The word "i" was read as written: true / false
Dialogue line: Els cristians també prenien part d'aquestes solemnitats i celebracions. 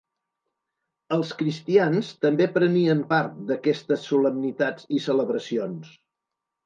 true